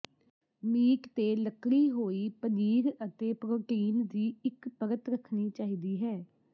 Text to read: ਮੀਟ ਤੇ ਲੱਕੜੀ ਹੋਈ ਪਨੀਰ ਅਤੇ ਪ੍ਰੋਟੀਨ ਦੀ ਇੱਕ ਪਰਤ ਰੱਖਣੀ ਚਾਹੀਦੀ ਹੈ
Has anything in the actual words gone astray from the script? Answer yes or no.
no